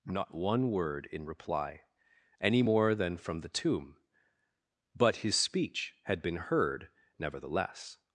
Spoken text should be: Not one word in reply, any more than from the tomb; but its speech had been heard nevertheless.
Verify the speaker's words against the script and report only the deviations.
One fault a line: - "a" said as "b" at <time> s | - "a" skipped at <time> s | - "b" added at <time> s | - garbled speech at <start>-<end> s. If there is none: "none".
- "its" said as "his" at 5.2 s